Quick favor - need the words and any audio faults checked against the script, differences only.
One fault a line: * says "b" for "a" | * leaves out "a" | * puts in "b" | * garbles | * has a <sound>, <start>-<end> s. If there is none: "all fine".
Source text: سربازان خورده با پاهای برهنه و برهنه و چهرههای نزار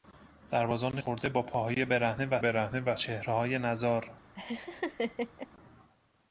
* has a laugh, 4.4-5.5 s